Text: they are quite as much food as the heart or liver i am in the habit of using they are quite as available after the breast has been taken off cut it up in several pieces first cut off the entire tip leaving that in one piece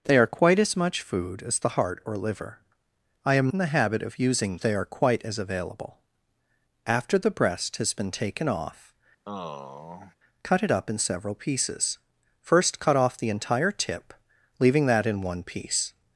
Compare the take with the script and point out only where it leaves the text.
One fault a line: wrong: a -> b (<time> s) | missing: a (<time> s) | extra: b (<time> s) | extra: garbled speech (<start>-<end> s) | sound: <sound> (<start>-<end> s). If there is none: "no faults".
sound: sigh (9.2-10.1 s)